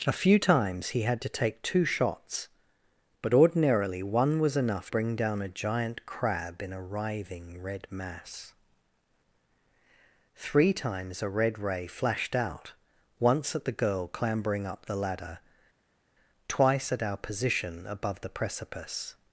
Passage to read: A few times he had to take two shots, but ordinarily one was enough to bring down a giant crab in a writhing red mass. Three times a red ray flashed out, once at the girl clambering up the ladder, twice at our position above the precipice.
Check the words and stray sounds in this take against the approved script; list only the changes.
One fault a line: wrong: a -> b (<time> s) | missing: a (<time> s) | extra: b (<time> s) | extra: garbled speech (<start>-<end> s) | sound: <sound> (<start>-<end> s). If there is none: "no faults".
missing: to (4.9 s)